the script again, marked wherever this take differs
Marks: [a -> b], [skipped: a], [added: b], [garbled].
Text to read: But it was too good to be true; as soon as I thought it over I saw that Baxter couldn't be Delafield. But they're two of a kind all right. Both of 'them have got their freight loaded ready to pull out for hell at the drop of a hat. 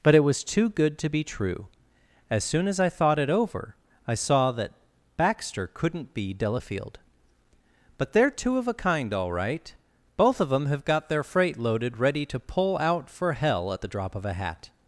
But it was too good to be true; as soon as I thought it over I saw that Baxter couldn't be Delafield. But they're two of a kind all right. Both of 'them have got their freight loaded ready to pull out for hell at the drop of a hat.